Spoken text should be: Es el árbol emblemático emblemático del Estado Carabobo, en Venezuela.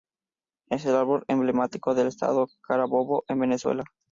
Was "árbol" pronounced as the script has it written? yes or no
yes